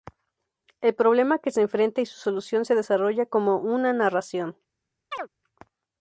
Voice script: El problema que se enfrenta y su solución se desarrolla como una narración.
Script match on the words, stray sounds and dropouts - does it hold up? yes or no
no